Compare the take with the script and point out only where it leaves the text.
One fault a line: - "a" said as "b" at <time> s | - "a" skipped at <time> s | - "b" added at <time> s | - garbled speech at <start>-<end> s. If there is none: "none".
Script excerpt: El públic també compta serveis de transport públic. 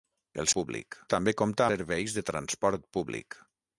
none